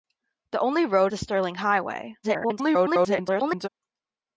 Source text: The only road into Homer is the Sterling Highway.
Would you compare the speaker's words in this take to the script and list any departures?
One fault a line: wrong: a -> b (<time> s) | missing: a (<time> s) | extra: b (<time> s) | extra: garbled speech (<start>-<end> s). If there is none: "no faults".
missing: into Homer is (1.1 s)
extra: garbled speech (2.2-3.7 s)